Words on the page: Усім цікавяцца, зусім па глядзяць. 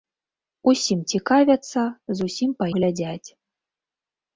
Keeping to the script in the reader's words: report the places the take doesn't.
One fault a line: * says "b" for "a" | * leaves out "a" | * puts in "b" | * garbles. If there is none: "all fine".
all fine